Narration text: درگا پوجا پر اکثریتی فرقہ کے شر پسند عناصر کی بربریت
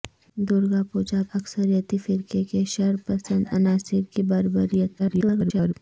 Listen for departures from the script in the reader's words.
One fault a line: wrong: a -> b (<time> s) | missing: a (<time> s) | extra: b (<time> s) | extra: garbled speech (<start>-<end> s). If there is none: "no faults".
missing: پر (1.2 s)
extra: garbled speech (5.0-5.7 s)